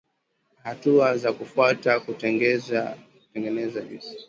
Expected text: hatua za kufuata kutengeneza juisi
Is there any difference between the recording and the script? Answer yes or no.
no